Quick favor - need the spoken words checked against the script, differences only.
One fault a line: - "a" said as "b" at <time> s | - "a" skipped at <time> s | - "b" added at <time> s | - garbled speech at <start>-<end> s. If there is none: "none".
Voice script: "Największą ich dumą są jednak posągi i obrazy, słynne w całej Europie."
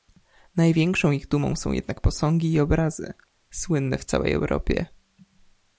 none